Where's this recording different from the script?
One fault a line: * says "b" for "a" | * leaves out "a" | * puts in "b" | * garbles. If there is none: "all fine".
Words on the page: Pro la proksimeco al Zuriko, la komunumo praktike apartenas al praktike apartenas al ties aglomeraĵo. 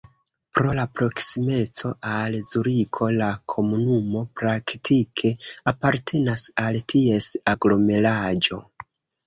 * leaves out "praktike apartenas al"